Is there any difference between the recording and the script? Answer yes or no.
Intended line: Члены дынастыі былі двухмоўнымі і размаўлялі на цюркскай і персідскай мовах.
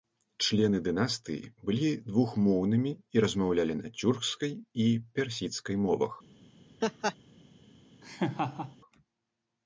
no